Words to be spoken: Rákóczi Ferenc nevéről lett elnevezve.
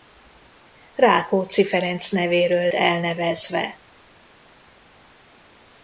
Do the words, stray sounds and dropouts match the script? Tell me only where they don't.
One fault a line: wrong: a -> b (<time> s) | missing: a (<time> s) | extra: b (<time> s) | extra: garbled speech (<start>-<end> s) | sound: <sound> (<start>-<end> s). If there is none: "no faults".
missing: lett (2.7 s)